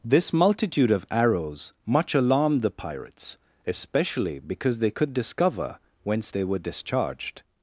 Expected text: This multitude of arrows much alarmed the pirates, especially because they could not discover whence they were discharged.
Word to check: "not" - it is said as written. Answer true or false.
false